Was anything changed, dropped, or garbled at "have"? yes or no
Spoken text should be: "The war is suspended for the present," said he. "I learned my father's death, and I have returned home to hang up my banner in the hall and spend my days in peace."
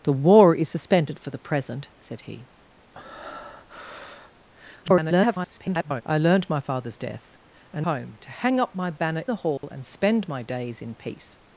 yes